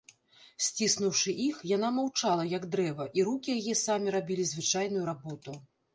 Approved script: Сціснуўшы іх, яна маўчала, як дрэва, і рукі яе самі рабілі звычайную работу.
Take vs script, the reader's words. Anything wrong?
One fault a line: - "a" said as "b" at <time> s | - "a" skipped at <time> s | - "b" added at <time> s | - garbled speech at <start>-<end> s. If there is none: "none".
none